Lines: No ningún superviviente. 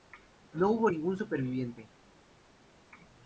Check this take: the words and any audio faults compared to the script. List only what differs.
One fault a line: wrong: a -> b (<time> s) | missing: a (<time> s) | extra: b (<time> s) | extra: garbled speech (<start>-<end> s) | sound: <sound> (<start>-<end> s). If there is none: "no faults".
extra: hubo (0.7 s)